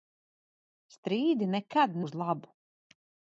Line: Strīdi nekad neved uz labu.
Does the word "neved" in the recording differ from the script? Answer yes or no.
yes